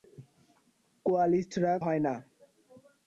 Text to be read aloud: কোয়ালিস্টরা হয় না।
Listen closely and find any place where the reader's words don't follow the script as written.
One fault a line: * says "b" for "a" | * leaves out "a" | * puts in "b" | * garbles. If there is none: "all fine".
all fine